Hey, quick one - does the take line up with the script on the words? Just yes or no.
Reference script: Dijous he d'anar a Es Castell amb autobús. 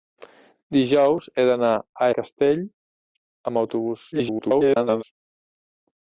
no